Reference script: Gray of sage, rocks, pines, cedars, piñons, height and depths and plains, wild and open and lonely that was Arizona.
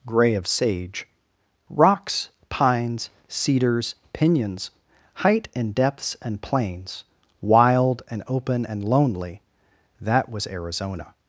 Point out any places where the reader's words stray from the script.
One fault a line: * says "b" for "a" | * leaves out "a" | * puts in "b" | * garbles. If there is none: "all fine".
all fine